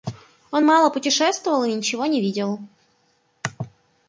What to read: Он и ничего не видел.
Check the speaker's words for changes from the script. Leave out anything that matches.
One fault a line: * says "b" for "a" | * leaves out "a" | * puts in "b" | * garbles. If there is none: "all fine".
* puts in "мало путешествовал"